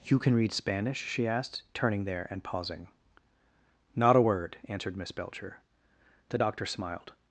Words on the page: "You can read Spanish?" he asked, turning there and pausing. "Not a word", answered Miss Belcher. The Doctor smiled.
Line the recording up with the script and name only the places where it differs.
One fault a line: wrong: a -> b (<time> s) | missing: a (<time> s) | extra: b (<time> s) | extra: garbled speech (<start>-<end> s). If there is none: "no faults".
wrong: he -> she (1.0 s)